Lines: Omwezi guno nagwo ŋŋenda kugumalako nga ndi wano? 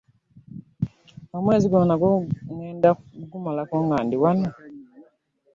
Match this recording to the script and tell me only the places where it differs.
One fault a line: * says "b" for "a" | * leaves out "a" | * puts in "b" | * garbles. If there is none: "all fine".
all fine